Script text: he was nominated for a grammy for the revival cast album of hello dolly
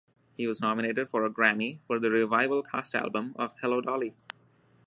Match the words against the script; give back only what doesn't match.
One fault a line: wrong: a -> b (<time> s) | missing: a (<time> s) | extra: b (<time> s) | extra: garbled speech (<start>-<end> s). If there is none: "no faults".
no faults